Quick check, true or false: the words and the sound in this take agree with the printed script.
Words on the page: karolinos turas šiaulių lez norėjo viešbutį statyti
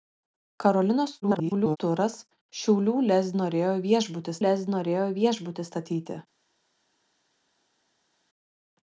false